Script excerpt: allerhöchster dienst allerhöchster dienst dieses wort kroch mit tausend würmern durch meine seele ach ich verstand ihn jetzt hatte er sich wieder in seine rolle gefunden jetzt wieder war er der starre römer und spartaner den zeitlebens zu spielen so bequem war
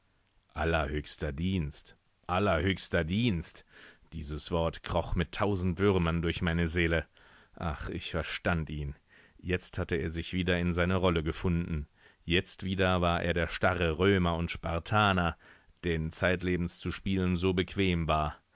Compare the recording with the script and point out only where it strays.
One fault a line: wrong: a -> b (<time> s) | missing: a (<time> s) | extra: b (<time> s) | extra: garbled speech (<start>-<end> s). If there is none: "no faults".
no faults